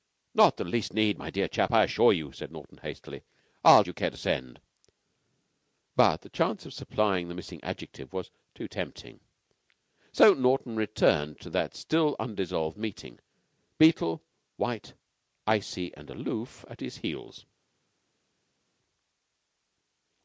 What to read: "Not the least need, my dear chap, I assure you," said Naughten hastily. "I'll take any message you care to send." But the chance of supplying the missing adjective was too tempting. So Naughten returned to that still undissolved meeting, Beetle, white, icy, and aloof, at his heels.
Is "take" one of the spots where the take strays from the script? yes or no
yes